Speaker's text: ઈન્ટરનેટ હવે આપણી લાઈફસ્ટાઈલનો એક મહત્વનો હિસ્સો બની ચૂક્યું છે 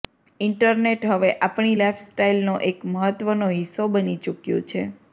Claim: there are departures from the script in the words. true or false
false